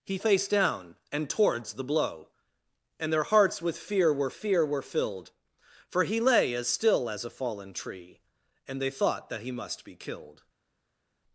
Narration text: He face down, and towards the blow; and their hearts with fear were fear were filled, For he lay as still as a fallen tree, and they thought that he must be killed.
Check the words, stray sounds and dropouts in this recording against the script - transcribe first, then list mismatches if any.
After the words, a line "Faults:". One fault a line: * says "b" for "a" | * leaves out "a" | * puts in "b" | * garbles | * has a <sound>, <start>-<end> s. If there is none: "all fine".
He face down, and towards the blow; and their hearts with fear were fear were filled, For he lay as still as a fallen tree, and they thought that he must be killed.
Faults:
all fine